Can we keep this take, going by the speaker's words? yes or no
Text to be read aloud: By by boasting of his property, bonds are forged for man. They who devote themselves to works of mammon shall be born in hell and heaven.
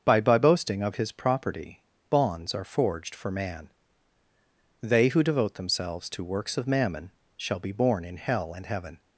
yes